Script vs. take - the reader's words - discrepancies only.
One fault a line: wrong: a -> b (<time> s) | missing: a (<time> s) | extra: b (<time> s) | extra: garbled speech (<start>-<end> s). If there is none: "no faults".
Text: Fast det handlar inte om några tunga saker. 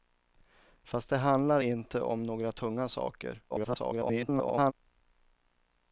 extra: garbled speech (3.5-4.7 s)